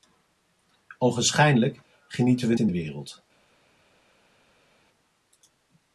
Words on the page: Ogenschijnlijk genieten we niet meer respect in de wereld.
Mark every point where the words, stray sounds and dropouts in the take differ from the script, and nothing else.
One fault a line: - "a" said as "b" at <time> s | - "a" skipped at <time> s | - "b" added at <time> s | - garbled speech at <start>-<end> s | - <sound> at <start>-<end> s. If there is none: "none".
- "niet meer respect" skipped at 2.5 s